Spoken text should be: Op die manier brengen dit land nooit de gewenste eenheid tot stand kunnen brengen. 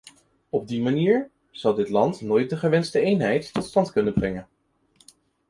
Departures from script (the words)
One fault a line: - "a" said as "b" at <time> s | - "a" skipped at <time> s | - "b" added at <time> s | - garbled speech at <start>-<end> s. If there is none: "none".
- "brengen" said as "zal" at 1.5 s